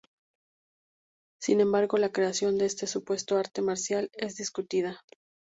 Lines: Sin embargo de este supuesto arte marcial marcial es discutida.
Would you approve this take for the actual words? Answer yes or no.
no